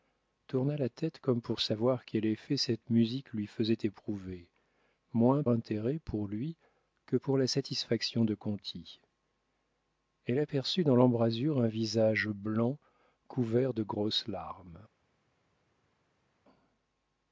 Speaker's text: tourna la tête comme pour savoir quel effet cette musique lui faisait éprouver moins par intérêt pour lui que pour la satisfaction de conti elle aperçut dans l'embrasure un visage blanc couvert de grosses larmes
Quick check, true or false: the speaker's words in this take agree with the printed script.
false